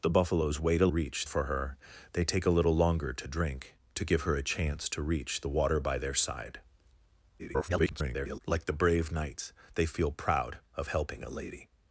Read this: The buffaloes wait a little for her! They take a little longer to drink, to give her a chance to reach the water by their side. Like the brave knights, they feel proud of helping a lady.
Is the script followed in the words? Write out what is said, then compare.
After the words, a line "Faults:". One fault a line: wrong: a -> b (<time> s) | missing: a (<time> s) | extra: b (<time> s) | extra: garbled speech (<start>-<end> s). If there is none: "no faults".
The buffaloes wait a reach for her! They take a little longer to drink, to give her a chance to reach the water by their side. [garbled] Like the brave knights, they feel proud of helping a lady.
Faults:
wrong: little -> reach (0.9 s)
extra: garbled speech (7.4-8.4 s)